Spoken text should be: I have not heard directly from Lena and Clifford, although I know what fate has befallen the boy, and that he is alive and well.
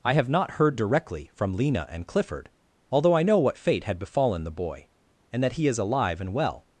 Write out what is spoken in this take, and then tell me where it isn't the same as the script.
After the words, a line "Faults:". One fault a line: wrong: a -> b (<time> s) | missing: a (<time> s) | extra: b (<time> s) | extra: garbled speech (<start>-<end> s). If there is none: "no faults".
I have not heard directly from Lena and Clifford, although I know what fate had befallen the boy, and that he is alive and well.
Faults:
wrong: has -> had (3.8 s)